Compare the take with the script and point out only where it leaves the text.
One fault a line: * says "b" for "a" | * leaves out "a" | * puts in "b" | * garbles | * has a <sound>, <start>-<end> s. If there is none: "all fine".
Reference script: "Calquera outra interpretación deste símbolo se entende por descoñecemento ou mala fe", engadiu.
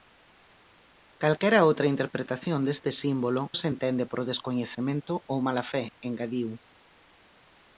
all fine